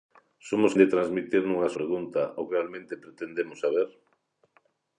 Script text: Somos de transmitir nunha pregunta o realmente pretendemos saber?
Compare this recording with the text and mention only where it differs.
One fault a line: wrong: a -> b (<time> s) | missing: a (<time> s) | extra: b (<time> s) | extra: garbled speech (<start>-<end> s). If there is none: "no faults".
no faults